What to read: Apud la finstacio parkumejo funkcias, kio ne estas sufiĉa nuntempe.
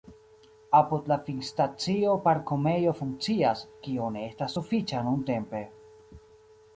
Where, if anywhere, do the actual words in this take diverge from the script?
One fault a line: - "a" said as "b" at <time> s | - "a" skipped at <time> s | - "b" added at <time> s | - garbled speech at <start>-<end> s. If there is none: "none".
none